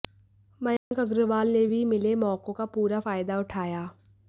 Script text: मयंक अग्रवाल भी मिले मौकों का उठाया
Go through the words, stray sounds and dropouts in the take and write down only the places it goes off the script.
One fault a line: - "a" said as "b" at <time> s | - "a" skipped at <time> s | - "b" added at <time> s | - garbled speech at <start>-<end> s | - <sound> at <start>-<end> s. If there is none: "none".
- dropout at 0.8-0.9 s
- "ने" added at 1.5 s
- "पूरा फायदा" added at 2.8 s